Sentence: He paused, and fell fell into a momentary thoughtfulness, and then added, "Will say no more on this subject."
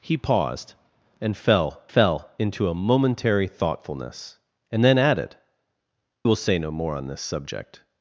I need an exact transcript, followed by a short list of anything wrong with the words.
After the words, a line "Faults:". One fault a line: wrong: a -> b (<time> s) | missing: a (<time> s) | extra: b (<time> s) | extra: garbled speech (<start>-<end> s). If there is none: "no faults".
He paused, and fell fell into a momentary thoughtfulness, and then added, "Will say no more on this subject."
Faults:
no faults